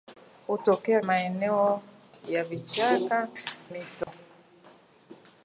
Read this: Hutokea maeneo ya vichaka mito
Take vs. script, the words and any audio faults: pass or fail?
fail